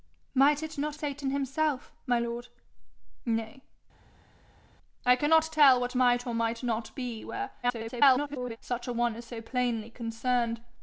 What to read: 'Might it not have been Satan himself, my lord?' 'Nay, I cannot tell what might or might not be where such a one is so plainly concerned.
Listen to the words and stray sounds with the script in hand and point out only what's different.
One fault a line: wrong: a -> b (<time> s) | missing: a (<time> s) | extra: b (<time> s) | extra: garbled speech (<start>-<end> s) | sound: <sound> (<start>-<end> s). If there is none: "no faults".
missing: have been (0.9 s)
extra: garbled speech (7.6-8.6 s)